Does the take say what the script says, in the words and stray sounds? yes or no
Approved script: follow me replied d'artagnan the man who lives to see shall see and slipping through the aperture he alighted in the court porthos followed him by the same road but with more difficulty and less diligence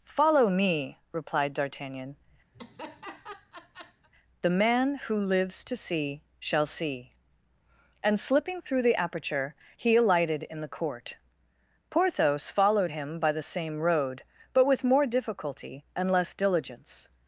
no